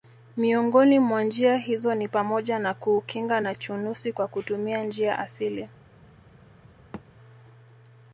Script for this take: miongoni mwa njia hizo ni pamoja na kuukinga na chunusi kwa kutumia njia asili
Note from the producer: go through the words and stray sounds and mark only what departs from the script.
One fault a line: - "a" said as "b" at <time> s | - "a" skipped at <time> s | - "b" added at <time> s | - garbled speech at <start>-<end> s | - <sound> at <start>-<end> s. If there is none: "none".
- thud at 6.9-7.1 s